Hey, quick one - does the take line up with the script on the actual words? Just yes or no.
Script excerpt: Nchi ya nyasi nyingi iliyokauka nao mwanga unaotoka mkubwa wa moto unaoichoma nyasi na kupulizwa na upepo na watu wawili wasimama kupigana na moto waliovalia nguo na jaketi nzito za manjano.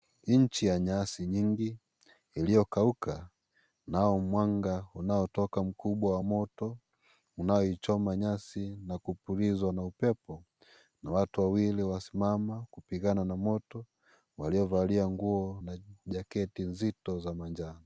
yes